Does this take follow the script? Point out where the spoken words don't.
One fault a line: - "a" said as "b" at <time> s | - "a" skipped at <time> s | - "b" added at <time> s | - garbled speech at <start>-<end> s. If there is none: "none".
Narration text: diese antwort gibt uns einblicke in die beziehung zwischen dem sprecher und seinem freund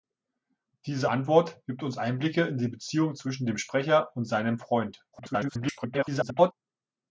- garbled speech at 5.1-6.5 s